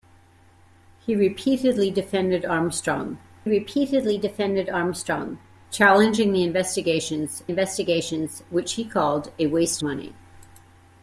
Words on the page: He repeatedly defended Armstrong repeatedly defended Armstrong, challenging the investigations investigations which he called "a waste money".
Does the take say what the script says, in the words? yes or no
yes